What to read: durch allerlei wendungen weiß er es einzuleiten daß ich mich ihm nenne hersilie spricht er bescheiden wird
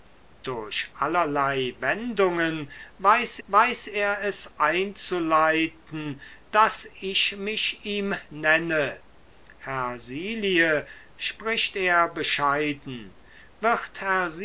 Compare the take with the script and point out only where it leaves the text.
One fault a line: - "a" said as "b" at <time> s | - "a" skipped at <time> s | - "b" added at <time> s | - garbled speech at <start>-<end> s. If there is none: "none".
- "weiß" added at 3.5 s